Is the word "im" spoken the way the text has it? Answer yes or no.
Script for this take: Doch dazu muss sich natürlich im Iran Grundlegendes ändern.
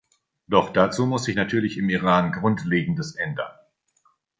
yes